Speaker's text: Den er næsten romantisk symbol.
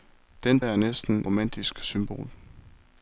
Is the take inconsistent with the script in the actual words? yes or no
no